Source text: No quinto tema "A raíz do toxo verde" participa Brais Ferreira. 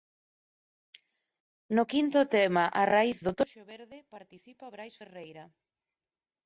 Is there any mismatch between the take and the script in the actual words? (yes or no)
no